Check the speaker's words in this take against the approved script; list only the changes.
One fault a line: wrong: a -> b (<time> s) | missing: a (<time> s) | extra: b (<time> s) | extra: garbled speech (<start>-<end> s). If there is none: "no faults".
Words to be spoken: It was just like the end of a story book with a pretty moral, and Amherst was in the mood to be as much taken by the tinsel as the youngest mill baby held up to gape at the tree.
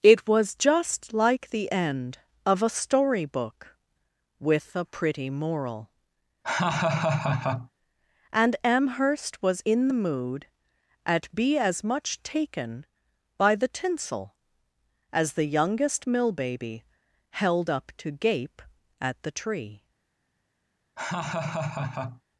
wrong: to -> at (11.1 s)